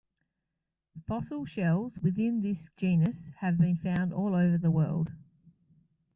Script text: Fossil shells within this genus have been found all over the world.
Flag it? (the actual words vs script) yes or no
no